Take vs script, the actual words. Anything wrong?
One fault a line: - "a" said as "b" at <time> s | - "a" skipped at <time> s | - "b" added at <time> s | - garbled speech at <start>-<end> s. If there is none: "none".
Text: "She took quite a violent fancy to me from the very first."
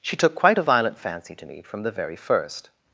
none